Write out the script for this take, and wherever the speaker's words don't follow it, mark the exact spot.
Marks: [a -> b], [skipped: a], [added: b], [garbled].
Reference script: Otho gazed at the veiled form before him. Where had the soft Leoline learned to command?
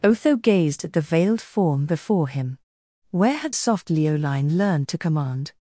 Otho gazed at the veiled form before him. Where had [skipped: the] soft Leoline learned to command?